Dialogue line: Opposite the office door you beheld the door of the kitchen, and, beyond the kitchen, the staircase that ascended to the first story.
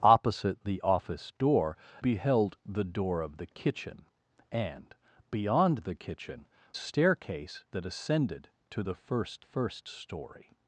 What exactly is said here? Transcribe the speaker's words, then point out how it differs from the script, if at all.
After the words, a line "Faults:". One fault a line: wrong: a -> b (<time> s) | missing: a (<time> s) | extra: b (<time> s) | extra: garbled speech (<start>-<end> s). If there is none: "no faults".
Opposite the office door beheld the door of the kitchen, and, beyond the kitchen, staircase that ascended to the first first story.
Faults:
missing: you (1.8 s)
missing: the (6.5 s)
extra: first (9.4 s)